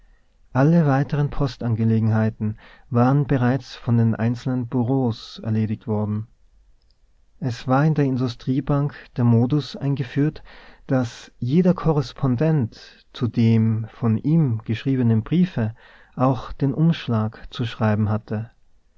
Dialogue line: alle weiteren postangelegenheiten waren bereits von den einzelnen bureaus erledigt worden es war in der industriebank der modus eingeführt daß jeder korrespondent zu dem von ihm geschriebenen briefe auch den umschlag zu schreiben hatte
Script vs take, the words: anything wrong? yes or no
no